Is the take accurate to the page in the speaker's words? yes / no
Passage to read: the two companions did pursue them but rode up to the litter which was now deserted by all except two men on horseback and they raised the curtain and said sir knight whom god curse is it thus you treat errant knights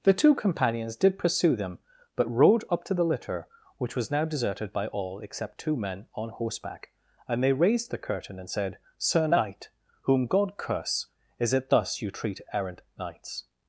yes